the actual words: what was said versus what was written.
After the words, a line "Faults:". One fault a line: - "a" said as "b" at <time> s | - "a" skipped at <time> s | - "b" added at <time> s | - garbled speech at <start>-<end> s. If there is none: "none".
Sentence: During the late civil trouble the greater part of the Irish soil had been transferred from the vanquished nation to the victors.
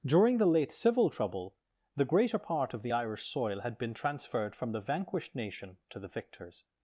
During the late civil trouble the greater part of the Irish soil had been transferred from the vanquished nation to the victors.
Faults:
none